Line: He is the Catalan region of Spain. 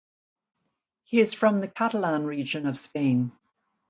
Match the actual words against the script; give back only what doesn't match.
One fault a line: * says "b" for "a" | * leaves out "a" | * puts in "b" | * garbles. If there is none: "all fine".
* puts in "from"